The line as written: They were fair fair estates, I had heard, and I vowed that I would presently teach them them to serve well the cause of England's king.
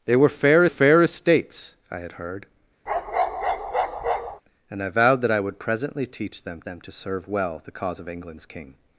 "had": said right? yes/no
yes